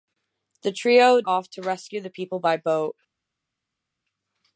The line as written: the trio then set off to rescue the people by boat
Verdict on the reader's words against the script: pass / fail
fail